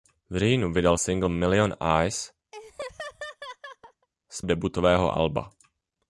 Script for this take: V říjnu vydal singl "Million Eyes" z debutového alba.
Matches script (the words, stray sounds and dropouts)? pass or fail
fail